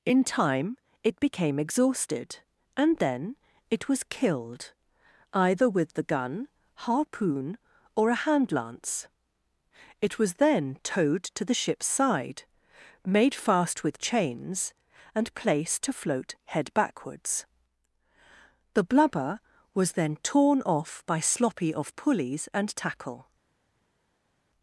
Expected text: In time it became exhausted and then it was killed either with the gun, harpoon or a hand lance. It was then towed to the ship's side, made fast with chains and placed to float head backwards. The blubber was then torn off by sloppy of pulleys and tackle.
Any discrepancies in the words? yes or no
no